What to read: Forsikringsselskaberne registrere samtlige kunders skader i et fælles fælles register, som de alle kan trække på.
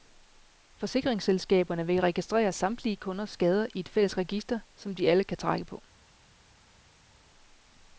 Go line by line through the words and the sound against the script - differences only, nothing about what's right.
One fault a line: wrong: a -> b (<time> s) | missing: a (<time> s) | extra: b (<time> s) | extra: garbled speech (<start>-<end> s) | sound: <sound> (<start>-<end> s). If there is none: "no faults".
extra: vil (1.9 s)
missing: fælles (4.2 s)